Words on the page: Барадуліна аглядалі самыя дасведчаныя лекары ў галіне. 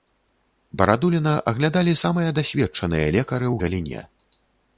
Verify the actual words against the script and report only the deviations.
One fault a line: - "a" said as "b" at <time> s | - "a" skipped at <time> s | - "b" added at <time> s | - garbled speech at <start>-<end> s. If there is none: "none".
none